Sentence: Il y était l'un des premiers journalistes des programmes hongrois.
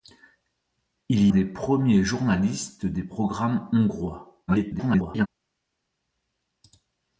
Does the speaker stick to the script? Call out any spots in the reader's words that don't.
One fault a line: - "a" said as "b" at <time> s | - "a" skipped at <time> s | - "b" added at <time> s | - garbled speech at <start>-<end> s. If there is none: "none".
- "y était l'un" skipped at 1.3 s
- garbled speech at 4.5-5.3 s